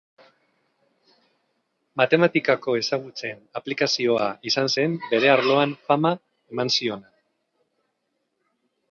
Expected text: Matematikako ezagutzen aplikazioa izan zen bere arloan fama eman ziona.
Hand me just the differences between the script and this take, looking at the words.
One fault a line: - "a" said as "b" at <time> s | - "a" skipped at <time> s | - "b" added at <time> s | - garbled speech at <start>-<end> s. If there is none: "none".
none